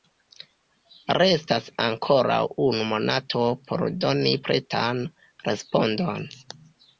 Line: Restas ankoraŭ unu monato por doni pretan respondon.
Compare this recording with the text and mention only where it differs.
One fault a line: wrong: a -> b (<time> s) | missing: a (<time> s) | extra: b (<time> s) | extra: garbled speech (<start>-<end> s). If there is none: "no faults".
no faults